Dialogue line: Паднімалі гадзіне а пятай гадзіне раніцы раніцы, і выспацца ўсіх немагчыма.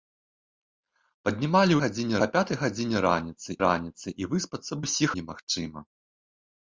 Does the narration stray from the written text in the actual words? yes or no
no